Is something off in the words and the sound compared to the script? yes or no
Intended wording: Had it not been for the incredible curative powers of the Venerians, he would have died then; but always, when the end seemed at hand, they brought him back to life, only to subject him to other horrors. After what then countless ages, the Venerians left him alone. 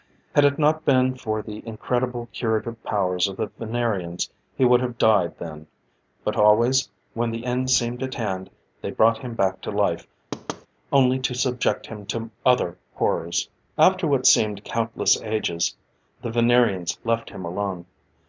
yes